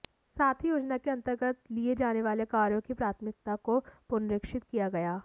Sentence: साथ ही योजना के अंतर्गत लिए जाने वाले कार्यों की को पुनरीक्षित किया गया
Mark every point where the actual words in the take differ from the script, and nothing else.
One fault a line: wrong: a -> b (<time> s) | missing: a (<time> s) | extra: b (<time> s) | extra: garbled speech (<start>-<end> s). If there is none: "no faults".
extra: प्राथमिकता (3.0 s)